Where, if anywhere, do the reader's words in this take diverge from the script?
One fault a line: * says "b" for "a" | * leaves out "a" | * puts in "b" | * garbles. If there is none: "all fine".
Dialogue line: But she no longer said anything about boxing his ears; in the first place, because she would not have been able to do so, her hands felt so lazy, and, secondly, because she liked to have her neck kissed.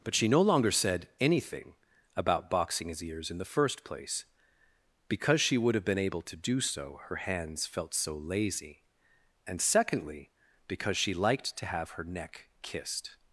* leaves out "not"